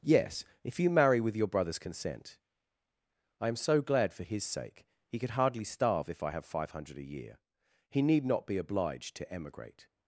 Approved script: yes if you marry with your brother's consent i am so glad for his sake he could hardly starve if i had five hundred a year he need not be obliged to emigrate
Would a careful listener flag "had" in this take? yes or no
yes